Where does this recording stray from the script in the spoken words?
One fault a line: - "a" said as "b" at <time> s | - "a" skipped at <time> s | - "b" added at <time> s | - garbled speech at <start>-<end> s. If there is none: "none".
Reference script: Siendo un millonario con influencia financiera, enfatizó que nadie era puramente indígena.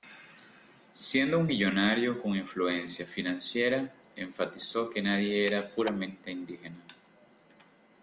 none